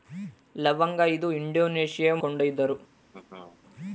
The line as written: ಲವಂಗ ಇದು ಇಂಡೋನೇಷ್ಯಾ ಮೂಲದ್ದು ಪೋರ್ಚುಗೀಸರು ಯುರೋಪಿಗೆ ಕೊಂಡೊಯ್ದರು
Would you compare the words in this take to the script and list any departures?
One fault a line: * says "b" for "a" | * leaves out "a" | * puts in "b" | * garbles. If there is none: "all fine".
* leaves out "ಮೂಲದ್ದು ಪೋರ್ಚುಗೀಸರು ಯುರೋಪಿಗೆ"